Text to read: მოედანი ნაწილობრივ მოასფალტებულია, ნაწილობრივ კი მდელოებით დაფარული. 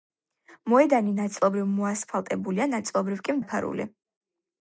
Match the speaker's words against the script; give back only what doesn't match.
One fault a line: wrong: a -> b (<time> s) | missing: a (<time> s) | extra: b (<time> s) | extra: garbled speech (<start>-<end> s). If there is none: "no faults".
missing: მდელოებით (3.4 s)